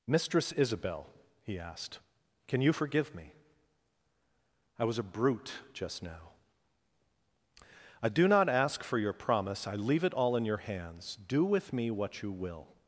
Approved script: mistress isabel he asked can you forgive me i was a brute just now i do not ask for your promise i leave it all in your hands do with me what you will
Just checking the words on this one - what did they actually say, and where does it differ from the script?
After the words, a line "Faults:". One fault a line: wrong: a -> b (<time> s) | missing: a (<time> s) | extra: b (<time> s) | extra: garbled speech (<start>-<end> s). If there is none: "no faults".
mistress isabel he asked can you forgive me i was a brute just now i do not ask for your promise i leave it all in your hands do with me what you will
Faults:
no faults